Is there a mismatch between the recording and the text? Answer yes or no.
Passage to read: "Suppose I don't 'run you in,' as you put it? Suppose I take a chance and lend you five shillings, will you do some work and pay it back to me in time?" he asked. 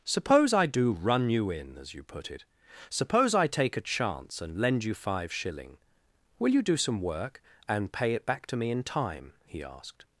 yes